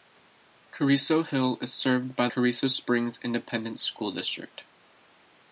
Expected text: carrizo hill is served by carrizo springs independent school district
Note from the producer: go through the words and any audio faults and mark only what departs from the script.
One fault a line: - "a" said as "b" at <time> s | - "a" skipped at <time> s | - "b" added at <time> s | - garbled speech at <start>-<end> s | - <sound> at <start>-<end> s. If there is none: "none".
none